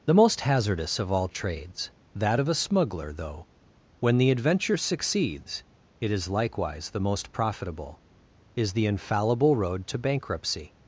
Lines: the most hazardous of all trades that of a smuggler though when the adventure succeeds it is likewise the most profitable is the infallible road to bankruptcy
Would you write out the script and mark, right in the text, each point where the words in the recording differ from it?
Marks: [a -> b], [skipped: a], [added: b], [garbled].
the most hazardous of all trades that of a smuggler though when the adventure succeeds it is likewise the most profitable is the infallible road to bankruptcy